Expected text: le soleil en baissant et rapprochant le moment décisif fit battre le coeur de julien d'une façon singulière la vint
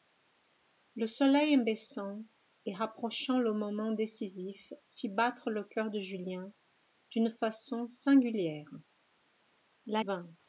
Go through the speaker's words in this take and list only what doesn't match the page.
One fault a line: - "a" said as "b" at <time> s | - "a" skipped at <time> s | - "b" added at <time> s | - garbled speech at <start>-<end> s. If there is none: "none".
none